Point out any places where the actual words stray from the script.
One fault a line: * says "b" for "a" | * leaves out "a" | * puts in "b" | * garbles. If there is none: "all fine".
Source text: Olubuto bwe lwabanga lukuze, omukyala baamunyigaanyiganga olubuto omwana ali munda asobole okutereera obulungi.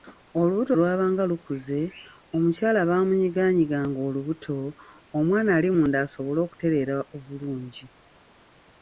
* leaves out "bwe"